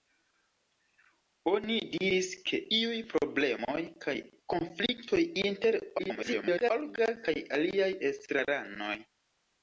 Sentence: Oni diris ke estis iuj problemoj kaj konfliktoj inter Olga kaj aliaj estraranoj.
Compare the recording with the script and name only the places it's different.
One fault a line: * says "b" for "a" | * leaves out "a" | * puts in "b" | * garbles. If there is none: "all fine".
* leaves out "estis"
* garbles